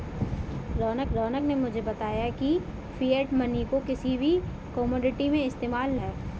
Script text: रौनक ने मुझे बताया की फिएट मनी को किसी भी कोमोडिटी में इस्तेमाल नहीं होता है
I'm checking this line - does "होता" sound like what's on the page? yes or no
no